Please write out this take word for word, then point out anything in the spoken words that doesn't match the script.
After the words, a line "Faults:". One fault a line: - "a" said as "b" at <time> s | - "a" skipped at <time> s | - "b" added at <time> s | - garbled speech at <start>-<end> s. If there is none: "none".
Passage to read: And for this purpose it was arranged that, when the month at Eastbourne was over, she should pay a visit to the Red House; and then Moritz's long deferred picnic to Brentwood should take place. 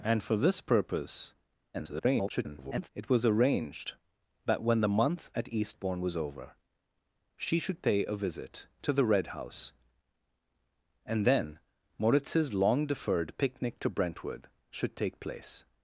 And for this purpose [garbled] it was arranged that, when the month at Eastbourne was over, she should pay a visit to the Red House; and then Moritz's long deferred picnic to Brentwood should take place.
Faults:
- garbled speech at 1.7-2.9 s